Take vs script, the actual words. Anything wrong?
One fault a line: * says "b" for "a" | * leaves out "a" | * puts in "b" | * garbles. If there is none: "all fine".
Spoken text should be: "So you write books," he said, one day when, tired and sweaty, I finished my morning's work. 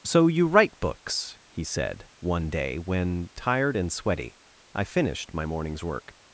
all fine